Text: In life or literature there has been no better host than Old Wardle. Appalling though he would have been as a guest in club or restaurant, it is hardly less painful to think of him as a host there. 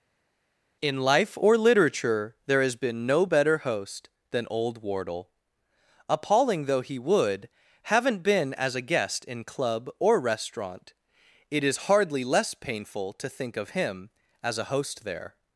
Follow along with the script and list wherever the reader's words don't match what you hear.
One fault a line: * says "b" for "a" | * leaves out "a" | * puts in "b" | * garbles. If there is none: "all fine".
* says "haven't" for "have"